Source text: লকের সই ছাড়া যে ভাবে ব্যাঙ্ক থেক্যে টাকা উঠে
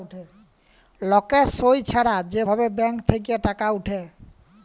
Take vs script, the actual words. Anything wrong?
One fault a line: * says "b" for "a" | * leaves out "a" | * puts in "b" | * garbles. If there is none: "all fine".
all fine